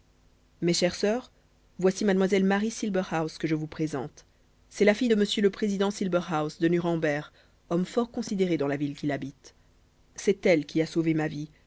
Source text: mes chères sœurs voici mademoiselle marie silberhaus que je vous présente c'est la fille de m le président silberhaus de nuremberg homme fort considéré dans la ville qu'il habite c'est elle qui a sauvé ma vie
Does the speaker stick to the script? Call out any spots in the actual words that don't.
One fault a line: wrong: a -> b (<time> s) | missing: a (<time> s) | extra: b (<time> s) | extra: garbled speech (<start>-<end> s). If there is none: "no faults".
no faults